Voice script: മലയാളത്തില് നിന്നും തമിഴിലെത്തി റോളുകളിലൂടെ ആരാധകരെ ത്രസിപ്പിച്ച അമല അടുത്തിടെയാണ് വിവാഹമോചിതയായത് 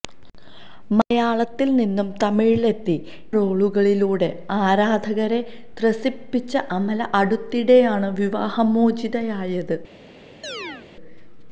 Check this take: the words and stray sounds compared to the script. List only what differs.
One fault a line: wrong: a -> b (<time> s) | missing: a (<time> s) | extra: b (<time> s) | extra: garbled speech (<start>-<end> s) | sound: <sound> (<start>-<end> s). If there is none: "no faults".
sound: chirp (10.4-10.9 s)